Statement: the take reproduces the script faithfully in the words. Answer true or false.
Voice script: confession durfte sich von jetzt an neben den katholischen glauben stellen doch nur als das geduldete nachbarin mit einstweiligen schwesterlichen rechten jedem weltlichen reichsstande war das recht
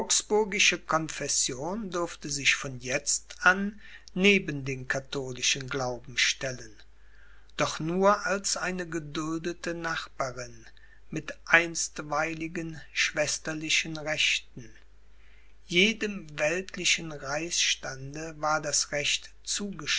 false